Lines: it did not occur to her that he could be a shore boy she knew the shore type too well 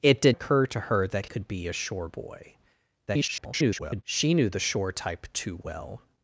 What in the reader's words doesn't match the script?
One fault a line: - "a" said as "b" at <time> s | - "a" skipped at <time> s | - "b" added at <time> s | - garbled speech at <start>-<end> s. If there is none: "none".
- "not" skipped at 0.3 s
- "he" skipped at 1.3 s
- garbled speech at 3.1-4.0 s